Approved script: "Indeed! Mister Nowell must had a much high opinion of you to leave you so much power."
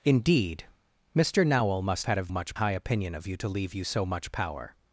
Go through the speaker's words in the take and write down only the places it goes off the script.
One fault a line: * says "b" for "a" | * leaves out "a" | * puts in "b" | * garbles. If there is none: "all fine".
all fine